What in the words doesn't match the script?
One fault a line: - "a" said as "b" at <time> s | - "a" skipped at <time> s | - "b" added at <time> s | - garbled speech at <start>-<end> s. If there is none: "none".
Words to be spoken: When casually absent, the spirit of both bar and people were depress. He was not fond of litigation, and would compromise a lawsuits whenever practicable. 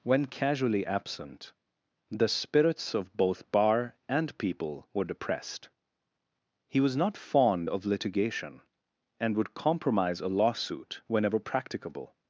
- "spirit" said as "spirits" at 2.3 s
- "depress" said as "depressed" at 5.0 s
- "lawsuits" said as "lawsuit" at 10.3 s